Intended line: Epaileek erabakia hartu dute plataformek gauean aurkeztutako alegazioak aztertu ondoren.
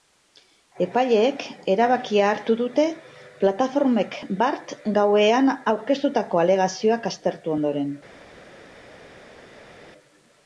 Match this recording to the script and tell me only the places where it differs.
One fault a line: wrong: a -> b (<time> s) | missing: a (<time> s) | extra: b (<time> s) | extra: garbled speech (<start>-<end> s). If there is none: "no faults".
extra: bart (4.4 s)